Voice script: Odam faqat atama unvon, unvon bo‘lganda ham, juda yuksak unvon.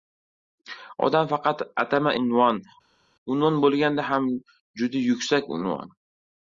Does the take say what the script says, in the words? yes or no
yes